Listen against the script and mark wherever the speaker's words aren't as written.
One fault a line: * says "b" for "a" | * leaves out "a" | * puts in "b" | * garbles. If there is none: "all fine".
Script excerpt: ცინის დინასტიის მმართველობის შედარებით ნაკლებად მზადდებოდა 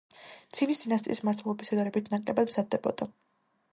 all fine